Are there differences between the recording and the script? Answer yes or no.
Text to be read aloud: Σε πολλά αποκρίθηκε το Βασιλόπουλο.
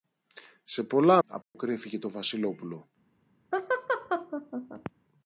no